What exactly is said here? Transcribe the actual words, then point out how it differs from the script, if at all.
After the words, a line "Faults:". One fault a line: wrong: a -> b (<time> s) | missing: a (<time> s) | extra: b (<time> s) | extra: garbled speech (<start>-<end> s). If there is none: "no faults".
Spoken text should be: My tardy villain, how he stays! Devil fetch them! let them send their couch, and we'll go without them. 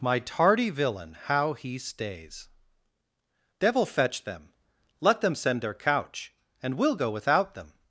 My tardy villain, how he stays! Devil fetch them! let them send their couch, and we'll go without them.
Faults:
no faults